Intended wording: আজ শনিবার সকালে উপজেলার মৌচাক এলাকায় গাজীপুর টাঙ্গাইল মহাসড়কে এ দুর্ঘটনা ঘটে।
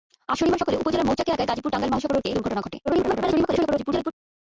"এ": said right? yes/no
no